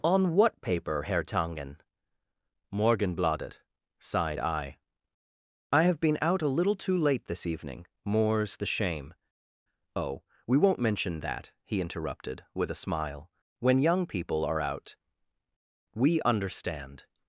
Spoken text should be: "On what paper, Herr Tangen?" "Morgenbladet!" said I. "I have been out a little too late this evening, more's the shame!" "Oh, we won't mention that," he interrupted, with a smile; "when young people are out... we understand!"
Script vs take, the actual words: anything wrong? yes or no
yes